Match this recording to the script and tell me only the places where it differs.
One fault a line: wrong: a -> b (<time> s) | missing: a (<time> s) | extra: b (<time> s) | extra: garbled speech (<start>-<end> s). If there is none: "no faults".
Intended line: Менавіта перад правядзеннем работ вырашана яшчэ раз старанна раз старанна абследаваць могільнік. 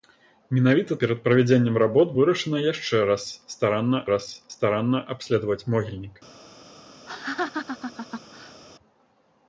no faults